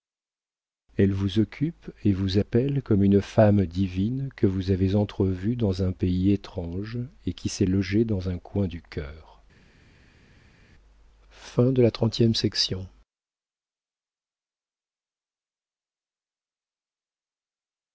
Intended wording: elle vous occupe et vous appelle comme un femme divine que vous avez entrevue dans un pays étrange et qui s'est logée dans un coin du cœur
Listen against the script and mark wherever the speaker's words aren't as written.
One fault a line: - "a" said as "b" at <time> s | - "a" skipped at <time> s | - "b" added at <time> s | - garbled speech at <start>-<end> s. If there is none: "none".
- "un" said as "une" at 3.0 s